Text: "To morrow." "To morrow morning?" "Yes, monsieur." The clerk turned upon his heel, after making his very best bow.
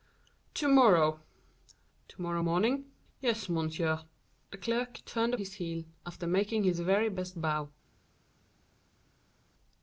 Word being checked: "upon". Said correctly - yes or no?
no